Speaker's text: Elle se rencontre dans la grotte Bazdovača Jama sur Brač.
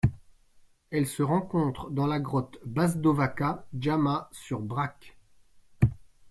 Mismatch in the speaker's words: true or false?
false